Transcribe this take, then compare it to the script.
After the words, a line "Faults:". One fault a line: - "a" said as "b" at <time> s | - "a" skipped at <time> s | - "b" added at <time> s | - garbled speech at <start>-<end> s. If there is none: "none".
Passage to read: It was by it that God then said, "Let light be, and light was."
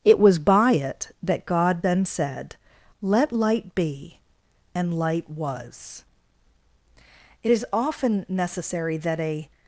It was by it that God then said, "Let light be, and light was." It is often necessary that a
Faults:
- "It is often necessary that a" added at 7.4 s